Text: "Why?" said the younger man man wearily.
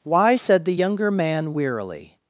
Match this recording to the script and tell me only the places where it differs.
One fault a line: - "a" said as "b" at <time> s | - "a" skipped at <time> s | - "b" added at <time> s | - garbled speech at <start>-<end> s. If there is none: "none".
- "man" skipped at 1.5 s